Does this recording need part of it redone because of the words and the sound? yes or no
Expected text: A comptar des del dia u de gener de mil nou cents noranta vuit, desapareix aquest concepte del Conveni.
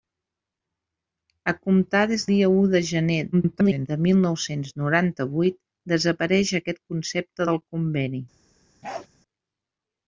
yes